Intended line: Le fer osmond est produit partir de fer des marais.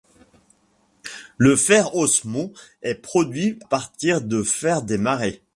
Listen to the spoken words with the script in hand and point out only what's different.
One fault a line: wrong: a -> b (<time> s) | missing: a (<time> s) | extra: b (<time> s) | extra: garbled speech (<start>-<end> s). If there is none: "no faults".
no faults